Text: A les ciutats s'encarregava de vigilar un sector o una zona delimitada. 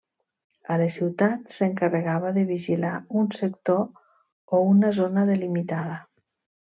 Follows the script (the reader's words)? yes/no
yes